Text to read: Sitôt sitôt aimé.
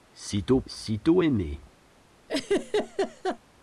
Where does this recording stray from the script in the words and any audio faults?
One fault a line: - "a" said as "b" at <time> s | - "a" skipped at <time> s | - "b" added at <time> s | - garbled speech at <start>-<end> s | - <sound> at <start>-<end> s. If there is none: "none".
- laugh at 2.3-3.4 s